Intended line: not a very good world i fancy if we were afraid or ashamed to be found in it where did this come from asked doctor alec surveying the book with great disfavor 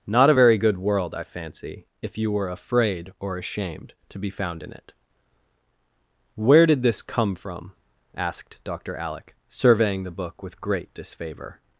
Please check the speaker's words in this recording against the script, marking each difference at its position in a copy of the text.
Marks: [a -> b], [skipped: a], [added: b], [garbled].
not a very good world i fancy if [we -> you] were afraid or ashamed to be found in it where did this come from asked doctor alec surveying the book with great disfavor